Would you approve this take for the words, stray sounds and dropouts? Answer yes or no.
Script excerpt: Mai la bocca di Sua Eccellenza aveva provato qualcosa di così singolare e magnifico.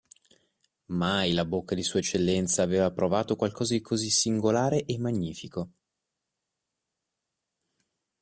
yes